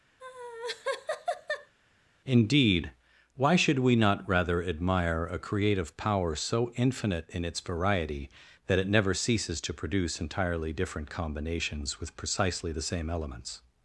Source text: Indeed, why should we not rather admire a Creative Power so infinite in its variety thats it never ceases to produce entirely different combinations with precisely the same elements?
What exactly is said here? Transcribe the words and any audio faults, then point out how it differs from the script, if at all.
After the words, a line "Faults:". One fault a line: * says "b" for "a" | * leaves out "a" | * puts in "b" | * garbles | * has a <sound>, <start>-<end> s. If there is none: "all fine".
Indeed, why should we not rather admire a Creative Power so infinite in its variety that it never ceases to produce entirely different combinations with precisely the same elements?
Faults:
* has a laugh, 0.2-1.7 s
* says "that" for "thats"